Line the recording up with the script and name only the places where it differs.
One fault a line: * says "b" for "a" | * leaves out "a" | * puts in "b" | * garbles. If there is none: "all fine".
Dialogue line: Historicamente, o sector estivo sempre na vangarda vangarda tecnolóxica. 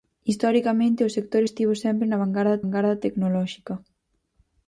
all fine